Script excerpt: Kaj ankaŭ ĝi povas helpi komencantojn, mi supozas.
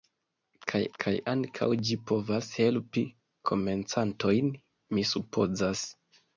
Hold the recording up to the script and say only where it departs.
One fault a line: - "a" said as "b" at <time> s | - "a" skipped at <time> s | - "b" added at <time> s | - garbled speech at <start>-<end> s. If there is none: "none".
- "kaj" added at 1.0 s